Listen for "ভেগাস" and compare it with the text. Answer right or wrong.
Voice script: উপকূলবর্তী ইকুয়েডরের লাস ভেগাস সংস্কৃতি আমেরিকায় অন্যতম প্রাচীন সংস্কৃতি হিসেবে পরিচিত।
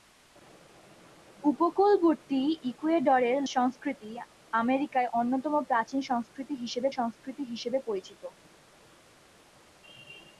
wrong